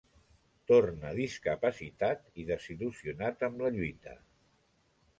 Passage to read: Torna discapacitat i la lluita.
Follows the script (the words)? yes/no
no